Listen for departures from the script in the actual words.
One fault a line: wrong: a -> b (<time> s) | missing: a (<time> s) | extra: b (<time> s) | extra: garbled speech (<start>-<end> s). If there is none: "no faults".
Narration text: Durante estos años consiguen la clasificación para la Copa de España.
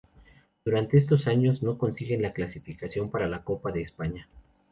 extra: no (1.6 s)